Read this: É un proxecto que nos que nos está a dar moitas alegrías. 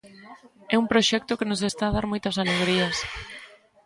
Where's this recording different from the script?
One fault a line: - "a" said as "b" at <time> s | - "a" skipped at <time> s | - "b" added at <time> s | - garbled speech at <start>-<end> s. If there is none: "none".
- "que nos" skipped at 1.6 s